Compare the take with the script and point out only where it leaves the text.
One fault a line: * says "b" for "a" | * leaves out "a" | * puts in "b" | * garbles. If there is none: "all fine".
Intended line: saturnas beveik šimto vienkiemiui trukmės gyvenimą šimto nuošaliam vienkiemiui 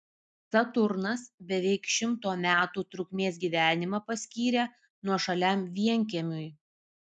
* says "metų" for "vienkiemiui"
* says "paskyrė" for "šimto"